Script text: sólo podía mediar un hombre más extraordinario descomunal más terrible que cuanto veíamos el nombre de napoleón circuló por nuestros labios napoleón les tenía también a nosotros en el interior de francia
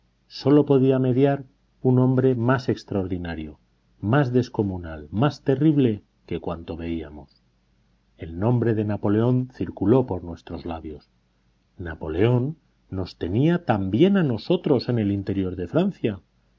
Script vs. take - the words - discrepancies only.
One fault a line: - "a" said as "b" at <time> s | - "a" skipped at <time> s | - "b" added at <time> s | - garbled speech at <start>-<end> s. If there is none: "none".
- "más" added at 4.0 s
- "les" said as "nos" at 12.9 s